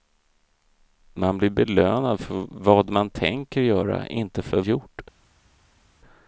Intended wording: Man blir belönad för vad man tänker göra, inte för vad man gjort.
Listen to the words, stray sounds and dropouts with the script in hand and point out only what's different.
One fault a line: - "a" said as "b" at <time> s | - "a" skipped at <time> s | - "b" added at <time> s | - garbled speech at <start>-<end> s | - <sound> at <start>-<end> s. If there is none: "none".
- "vad man" skipped at 4.6 s